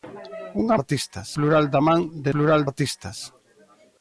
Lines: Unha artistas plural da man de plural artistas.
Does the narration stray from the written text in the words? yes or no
no